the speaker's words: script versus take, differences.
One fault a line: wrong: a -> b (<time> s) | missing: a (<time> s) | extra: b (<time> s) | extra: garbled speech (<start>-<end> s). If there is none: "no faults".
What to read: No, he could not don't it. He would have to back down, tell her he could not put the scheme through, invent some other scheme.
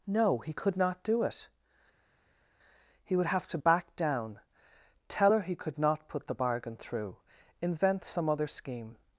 wrong: don't -> do (1.0 s)
wrong: scheme -> bargain (6.3 s)